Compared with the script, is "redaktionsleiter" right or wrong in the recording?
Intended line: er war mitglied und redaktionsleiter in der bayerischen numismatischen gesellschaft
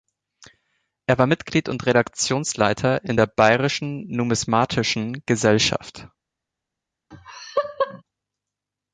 right